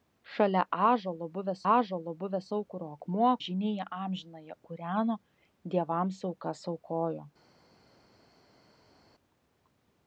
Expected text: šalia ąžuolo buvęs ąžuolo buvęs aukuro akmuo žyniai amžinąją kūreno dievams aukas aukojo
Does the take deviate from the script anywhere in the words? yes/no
no